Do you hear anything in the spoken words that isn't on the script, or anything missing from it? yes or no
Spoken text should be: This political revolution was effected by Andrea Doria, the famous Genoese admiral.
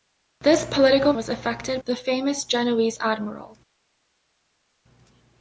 yes